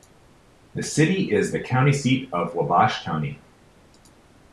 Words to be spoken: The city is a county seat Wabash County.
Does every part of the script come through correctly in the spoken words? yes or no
no